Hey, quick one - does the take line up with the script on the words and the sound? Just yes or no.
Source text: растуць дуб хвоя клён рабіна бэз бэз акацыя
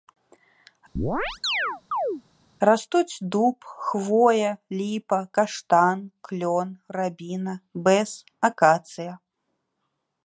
no